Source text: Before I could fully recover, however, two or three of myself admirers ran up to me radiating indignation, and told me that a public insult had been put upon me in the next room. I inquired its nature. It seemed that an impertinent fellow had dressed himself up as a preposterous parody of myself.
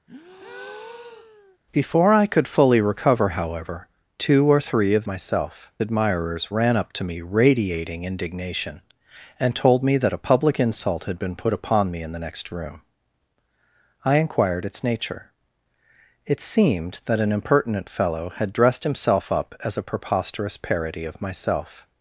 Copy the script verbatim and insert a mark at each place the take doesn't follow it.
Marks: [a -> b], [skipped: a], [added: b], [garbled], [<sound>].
[breath] Before I could fully recover, however, two or three of myself admirers ran up to me radiating indignation, and told me that a public insult had been put upon me in the next room. I inquired its nature. It seemed that an impertinent fellow had dressed himself up as a preposterous parody of myself.